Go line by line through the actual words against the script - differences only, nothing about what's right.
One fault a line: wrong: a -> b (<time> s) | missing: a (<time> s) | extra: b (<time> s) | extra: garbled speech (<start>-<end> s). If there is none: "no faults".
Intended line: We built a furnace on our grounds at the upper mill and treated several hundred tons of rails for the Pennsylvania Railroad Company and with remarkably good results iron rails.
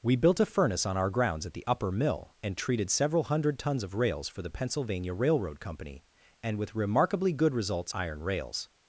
no faults